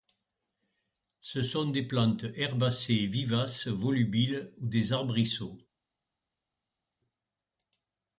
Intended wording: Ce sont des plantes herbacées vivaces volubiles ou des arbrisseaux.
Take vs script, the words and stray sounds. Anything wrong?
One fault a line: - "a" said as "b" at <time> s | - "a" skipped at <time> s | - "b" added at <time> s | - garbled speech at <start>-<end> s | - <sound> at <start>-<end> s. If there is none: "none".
none